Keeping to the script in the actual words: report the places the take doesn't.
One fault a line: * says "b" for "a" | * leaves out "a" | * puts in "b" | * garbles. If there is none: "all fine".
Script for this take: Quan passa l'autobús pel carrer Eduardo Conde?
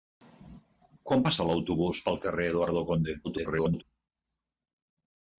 * garbles